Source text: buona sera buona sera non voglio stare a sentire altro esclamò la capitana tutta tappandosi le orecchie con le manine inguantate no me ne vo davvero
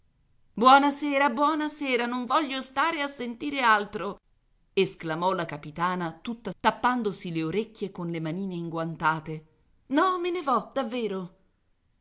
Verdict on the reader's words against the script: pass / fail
pass